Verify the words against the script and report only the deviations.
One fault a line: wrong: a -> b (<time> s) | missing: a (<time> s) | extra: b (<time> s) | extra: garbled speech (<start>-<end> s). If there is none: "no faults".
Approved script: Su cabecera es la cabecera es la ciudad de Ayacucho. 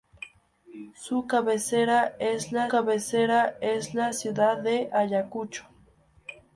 no faults